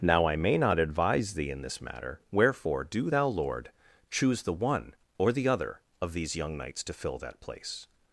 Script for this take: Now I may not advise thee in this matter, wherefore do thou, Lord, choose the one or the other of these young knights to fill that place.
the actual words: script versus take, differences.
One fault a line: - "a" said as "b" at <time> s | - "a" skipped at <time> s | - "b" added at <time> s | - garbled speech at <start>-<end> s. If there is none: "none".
none